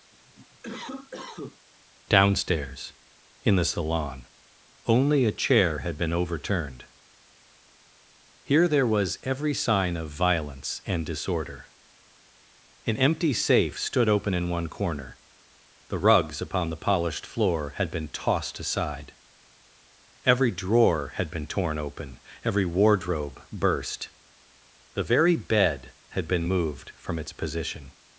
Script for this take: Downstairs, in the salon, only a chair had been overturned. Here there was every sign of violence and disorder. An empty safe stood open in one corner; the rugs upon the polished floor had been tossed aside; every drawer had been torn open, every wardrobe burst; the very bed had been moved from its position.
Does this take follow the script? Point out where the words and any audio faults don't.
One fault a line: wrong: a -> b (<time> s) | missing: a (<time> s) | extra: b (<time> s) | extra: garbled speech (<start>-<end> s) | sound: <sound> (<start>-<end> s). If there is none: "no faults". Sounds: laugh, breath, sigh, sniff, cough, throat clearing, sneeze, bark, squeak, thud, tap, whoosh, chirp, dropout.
sound: cough (0.1-1.6 s)